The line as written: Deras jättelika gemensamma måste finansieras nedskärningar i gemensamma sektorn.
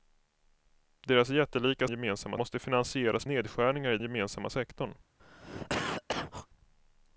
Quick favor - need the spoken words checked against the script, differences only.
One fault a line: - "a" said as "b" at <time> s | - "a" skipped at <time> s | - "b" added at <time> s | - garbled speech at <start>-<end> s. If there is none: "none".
none